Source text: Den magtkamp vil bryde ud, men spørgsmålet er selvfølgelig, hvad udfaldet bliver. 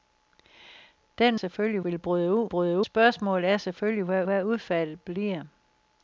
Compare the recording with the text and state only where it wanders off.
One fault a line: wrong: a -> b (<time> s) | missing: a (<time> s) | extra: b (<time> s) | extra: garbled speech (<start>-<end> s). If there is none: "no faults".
wrong: magtkamp -> selvfølgelig (1.3 s)
wrong: men -> bryde (2.5 s)
extra: hvad (4.2 s)